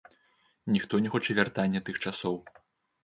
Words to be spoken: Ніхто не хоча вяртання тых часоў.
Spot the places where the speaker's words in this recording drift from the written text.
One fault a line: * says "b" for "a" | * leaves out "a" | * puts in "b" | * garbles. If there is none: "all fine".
all fine